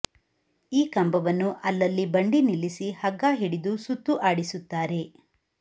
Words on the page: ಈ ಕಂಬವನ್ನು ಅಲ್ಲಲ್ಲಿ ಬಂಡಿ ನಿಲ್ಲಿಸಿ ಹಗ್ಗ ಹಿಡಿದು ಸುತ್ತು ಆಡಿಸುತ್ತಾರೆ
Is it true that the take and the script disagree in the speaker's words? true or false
false